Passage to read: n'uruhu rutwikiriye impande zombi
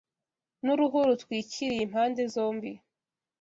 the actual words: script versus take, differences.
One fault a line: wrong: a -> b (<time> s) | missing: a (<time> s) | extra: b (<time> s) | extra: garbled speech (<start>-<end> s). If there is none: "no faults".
no faults